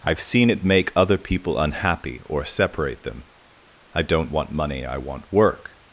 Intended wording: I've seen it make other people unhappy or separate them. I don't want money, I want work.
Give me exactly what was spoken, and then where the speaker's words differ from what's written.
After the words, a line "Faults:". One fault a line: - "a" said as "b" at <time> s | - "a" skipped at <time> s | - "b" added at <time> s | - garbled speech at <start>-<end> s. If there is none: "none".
I've seen it make other people unhappy or separate them. I don't want money, I want work.
Faults:
none